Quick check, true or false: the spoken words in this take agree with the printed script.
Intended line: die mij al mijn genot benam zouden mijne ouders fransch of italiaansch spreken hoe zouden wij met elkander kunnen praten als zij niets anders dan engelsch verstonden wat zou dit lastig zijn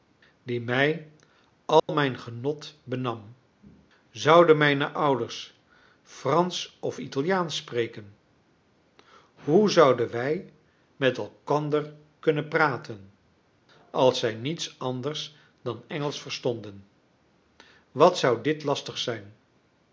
true